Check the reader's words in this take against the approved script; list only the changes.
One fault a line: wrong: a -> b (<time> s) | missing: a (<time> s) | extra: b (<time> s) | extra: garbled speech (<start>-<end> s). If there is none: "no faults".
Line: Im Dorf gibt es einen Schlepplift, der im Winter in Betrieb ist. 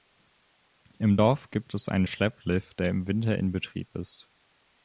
no faults